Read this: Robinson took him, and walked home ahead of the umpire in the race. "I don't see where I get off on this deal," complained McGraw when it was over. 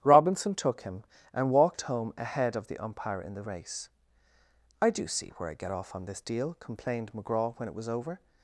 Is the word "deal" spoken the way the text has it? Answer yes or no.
yes